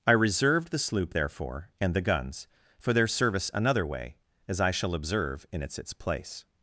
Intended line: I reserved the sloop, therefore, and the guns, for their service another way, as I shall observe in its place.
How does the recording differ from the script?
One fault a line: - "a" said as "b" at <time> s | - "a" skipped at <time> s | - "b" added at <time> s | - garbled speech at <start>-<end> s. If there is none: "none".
- "its" added at 5.8 s